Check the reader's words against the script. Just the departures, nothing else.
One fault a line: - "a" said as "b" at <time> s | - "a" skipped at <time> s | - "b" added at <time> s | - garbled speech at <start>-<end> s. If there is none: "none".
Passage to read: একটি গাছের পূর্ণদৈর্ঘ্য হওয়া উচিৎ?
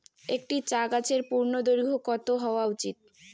- "চা" added at 0.7 s
- "কত" added at 2.1 s